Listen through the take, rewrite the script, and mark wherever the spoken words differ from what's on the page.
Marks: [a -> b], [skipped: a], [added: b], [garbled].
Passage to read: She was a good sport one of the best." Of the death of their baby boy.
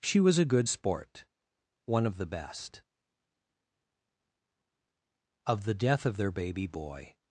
She was a good sport one of the best." Of the death of their baby boy.